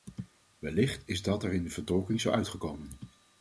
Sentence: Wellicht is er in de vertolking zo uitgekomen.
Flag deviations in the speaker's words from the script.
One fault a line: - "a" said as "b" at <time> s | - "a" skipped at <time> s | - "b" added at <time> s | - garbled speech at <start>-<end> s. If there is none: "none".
- "dat" added at 1.2 s